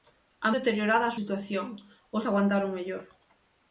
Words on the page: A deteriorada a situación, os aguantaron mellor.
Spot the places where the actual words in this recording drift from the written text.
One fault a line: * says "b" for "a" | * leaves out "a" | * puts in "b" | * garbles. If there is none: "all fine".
all fine